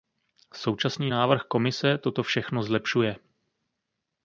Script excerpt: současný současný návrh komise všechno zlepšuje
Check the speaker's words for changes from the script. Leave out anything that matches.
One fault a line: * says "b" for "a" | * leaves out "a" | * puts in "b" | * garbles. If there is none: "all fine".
* leaves out "současný"
* puts in "toto"